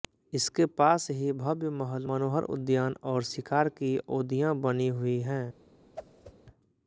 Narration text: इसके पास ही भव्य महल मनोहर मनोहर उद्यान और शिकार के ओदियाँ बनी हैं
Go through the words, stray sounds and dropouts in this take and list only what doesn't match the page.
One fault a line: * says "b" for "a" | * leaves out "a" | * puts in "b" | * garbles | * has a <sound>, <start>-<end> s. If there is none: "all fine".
* leaves out "मनोहर"
* says "की" for "के"
* puts in "हुई"
* has a whoosh, 6.0-6.3 s